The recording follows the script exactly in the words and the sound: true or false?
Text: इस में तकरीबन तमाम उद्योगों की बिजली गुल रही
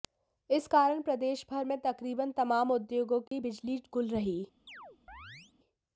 false